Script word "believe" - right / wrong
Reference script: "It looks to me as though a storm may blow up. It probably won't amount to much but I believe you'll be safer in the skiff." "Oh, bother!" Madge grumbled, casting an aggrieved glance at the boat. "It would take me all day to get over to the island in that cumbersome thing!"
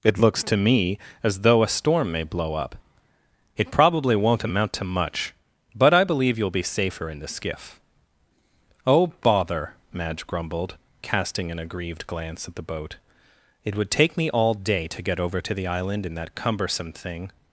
right